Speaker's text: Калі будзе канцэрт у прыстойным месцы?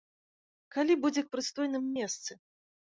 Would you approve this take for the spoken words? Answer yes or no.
no